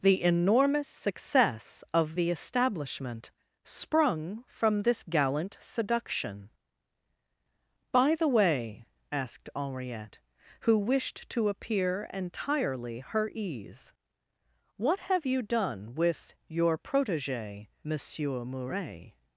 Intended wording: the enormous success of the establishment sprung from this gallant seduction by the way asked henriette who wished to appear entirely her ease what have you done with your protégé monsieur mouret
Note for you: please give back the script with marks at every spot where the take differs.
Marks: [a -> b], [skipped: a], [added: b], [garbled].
the enormous success of the establishment sprung from this gallant seduction by the way asked henriette who wished to appear entirely her ease what have you done with your protégé monsieur mouret